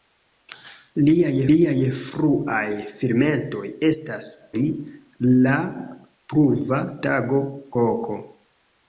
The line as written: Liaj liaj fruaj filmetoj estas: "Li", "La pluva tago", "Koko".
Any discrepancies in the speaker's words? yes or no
no